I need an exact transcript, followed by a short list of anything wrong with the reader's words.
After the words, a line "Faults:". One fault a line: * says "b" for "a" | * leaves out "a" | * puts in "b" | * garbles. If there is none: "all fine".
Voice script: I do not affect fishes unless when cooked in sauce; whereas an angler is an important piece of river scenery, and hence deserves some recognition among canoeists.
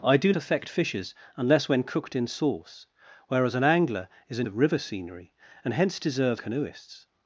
I do affect fishes unless when cooked in sauce; whereas an angler is an of river scenery, and hence deserves canoeists.
Faults:
* leaves out "not"
* leaves out "important piece"
* leaves out "some recognition among"